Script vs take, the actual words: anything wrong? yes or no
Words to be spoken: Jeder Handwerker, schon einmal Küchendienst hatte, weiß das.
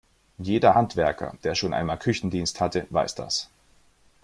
yes